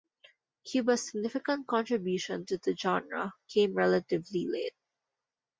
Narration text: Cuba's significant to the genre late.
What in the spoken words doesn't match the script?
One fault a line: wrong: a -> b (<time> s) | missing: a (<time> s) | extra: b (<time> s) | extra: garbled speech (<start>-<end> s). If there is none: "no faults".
extra: contribution (1.7 s)
extra: came relatively (3.5 s)